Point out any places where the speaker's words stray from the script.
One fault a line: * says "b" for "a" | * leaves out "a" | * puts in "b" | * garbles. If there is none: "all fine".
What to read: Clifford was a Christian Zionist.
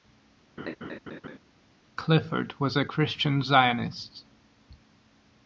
all fine